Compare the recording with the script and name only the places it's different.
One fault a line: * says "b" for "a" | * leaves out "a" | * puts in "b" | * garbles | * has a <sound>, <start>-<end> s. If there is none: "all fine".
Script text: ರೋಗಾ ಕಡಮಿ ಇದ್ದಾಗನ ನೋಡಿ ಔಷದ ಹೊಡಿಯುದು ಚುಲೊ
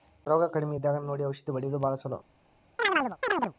* puts in "ಭಾಳ"
* has a chirp, 2.8-3.5 s